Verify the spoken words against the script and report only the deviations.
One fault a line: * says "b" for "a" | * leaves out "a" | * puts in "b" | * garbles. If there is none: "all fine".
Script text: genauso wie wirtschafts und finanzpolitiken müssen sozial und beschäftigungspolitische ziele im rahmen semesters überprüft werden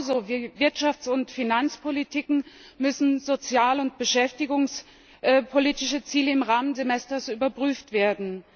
all fine